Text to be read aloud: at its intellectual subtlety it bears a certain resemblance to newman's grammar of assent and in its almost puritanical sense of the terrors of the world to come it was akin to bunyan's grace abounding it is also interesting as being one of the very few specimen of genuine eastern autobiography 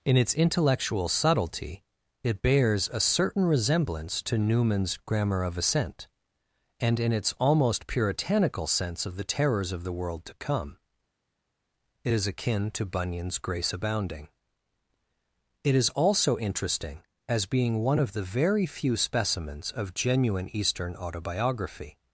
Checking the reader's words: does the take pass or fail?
fail